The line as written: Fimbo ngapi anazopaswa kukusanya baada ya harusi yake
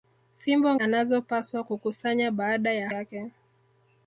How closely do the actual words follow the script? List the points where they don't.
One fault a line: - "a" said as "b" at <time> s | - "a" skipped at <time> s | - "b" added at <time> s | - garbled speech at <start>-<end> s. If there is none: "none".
- "ngapi" skipped at 0.8 s
- "harusi" skipped at 2.9 s